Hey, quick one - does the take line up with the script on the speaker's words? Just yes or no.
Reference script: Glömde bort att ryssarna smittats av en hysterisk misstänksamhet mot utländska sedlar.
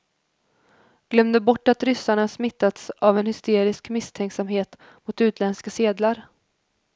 yes